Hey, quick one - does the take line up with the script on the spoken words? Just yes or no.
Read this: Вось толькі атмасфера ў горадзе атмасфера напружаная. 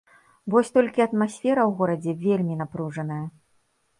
no